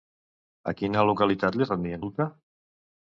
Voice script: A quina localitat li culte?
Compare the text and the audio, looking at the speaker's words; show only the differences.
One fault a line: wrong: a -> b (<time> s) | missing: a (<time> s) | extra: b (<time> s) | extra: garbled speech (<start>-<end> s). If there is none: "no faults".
extra: rendien (1.7 s)